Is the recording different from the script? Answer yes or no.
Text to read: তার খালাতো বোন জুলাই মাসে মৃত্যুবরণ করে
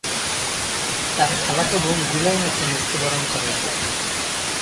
no